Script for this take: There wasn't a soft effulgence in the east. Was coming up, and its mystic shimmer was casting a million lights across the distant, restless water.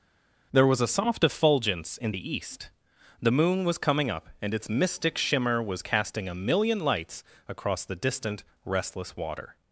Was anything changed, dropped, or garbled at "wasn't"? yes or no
yes